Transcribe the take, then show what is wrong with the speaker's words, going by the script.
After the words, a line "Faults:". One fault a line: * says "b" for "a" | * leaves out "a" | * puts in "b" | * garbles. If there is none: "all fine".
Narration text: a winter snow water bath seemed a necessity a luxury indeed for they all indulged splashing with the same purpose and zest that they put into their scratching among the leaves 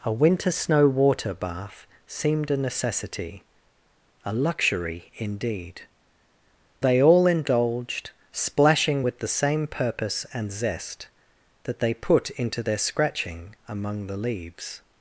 a winter snow water bath seemed a necessity a luxury indeed they all indulged splashing with the same purpose and zest that they put into their scratching among the leaves
Faults:
* leaves out "for"